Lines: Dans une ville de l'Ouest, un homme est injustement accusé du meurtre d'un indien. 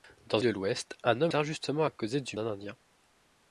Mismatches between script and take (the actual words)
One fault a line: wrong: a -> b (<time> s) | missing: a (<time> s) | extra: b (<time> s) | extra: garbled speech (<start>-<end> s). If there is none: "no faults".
missing: une ville (0.4 s)
missing: est (1.3 s)
missing: meurtre (2.4 s)